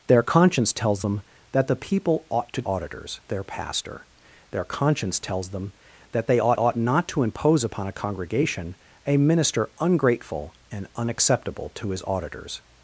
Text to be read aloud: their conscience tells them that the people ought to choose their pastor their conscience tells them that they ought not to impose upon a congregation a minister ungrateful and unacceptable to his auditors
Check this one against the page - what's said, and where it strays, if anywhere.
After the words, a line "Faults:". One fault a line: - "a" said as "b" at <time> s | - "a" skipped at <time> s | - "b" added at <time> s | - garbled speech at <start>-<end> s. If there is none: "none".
their conscience tells them that the people ought to auditors their pastor their conscience tells them that they ought ought not to impose upon a congregation a minister ungrateful and unacceptable to his auditors
Faults:
- "choose" said as "auditors" at 2.6 s
- "ought" added at 6.5 s